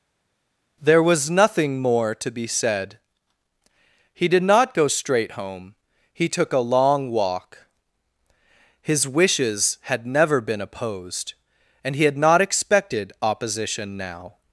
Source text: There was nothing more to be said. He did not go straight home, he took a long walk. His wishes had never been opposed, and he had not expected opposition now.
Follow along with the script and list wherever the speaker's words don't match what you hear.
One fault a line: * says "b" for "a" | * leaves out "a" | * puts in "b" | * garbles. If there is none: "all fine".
all fine